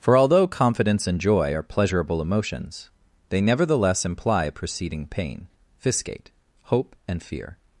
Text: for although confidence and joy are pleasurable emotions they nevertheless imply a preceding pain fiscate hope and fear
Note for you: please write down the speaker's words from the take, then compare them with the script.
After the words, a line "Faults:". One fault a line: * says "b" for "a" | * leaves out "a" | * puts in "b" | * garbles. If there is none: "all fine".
for although confidence and joy are pleasurable emotions they nevertheless imply a preceding pain fiscate hope and fear
Faults:
all fine